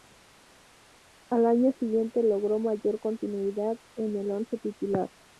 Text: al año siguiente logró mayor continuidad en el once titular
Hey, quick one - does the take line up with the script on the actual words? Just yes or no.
yes